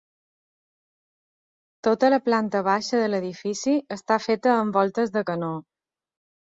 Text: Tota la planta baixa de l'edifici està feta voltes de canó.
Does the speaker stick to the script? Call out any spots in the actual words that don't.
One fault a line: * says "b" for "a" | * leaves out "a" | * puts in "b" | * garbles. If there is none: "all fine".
* puts in "amb"